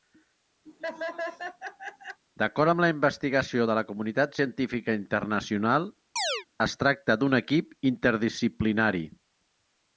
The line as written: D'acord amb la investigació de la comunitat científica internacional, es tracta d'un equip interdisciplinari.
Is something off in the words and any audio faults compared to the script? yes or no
yes